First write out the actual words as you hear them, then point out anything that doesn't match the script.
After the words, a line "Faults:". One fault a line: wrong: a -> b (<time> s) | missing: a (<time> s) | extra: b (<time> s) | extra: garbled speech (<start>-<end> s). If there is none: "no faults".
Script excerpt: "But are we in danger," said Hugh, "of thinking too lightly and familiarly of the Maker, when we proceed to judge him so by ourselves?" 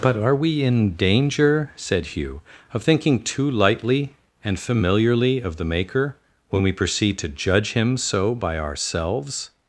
"But are we in danger," said Hugh, "of thinking too lightly and familiarly of the Maker, when we proceed to judge him so by ourselves?"
Faults:
no faults